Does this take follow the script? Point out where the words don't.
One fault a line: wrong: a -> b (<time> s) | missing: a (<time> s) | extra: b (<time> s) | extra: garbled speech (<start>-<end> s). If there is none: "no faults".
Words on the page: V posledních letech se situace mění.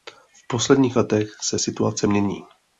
no faults